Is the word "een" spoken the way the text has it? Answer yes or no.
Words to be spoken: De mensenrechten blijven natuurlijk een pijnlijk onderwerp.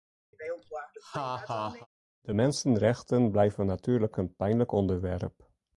yes